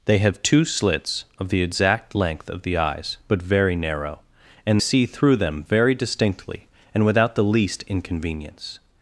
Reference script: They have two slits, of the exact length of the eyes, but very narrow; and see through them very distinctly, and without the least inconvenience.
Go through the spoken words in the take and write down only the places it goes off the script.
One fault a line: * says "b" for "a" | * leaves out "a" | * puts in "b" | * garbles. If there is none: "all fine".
all fine